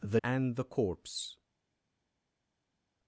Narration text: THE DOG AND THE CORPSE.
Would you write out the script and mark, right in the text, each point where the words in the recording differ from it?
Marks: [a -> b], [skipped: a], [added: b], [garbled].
THE [skipped: DOG] AND THE CORPSE.